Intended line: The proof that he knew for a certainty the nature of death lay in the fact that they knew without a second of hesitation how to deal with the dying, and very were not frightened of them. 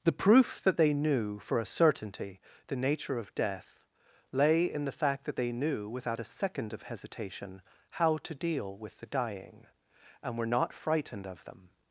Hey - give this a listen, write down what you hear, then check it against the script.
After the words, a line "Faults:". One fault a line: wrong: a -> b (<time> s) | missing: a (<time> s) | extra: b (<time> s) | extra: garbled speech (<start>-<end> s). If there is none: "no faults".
The proof that they knew for a certainty the nature of death lay in the fact that they knew without a second of hesitation how to deal with the dying, and were not frightened of them.
Faults:
wrong: he -> they (0.8 s)
missing: very (10.4 s)